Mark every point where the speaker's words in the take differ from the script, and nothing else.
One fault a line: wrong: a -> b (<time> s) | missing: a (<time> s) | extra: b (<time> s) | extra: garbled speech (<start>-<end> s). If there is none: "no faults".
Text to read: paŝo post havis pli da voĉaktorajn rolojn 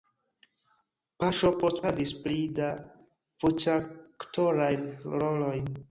no faults